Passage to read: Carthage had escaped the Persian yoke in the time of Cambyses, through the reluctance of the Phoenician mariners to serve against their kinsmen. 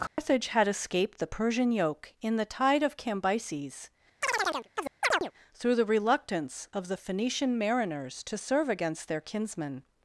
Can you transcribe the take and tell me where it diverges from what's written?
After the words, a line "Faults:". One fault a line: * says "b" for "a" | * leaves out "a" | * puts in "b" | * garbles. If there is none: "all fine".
Carthage had escaped the Persian yoke in the tide of Cambyses, through the reluctance of the Phoenician mariners to serve against their kinsmen.
Faults:
* says "tide" for "time"